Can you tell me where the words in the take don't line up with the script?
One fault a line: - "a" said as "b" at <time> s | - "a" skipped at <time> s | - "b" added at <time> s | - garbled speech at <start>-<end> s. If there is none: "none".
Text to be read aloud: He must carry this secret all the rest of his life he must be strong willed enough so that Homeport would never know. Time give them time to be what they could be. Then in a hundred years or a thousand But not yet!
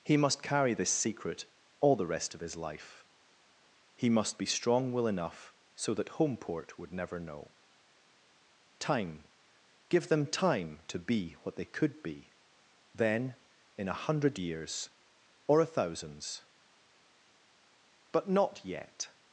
- "willed" said as "will" at 4.9 s
- "thousand" said as "thousands" at 15.6 s